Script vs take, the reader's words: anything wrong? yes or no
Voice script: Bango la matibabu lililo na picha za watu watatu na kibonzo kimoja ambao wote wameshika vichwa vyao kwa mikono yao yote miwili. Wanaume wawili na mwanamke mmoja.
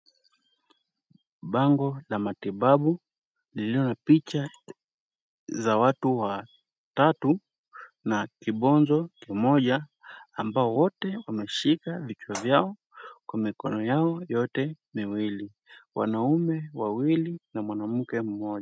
no